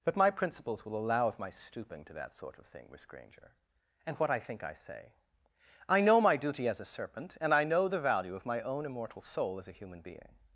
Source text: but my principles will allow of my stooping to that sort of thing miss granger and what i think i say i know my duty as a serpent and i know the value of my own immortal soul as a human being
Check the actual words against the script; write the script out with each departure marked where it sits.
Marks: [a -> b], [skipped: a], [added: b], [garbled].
but my principles will allow of my stooping to that sort of thing miss granger and what i think i say i know my duty as a serpent and i know the value of my own immortal soul as a human being